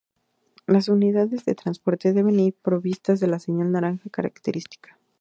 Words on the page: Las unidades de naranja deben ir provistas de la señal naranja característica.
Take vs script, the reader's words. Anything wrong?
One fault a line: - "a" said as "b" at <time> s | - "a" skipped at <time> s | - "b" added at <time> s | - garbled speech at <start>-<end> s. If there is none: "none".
- "naranja" said as "transporte" at 1.5 s